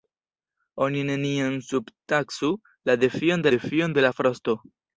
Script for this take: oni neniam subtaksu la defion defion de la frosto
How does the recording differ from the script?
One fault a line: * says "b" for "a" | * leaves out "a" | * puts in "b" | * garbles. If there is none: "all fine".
all fine